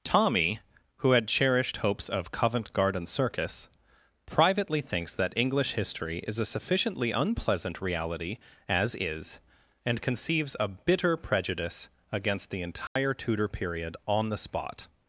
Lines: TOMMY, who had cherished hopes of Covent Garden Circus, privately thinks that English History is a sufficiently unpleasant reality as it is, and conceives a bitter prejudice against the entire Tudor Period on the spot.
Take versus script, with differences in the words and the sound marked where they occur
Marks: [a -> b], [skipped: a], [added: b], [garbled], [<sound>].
TOMMY, who had cherished hopes of Covent Garden Circus, privately thinks that English History is a sufficiently unpleasant reality as [skipped: it] is, and conceives a bitter prejudice against the entire [dropout] Tudor Period on the spot.